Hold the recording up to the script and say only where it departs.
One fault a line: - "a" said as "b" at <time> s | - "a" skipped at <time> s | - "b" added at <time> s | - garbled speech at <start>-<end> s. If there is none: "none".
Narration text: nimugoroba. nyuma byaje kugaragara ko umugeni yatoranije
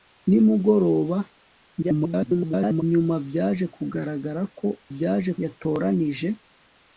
- garbled speech at 1.8-2.8 s
- "umugeni" said as "byaje" at 4.9 s